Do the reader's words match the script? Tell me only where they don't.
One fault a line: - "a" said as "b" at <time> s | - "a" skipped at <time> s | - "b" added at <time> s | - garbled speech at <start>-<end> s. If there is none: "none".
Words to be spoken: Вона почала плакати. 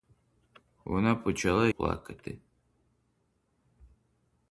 none